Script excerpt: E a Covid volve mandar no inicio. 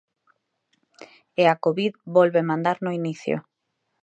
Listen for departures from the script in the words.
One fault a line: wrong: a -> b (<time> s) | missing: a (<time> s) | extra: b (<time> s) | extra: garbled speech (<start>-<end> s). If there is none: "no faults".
no faults